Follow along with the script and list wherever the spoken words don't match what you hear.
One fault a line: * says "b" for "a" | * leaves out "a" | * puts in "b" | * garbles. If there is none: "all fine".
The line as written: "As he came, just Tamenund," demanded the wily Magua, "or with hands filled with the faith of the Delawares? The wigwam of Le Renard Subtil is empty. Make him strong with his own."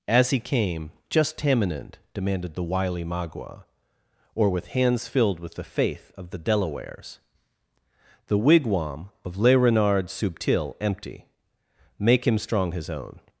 * leaves out "is"
* leaves out "with"